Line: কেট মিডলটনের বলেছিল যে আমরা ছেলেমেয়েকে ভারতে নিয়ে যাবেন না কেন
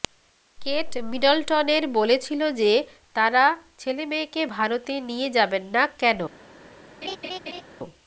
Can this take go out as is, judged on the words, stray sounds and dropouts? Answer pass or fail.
fail